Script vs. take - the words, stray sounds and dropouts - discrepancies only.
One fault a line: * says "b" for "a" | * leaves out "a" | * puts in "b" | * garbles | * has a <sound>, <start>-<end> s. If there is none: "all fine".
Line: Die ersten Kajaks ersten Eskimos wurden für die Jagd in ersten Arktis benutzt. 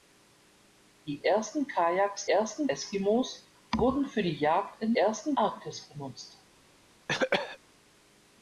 * has a cough, 7.1-7.6 s